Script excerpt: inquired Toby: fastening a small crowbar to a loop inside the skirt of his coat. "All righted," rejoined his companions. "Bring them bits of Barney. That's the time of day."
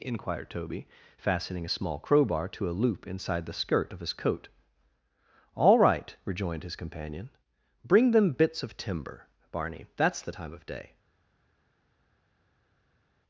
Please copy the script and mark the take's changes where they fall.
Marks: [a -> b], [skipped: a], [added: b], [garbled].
inquired Toby: fastening a small crowbar to a loop inside the skirt of his coat. "All [righted," -> right] rejoined his [companions. -> companion] "Bring them bits of [added: timber] Barney. That's the time of day."